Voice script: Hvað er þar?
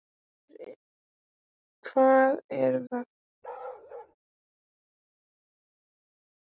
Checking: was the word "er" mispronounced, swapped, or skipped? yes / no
no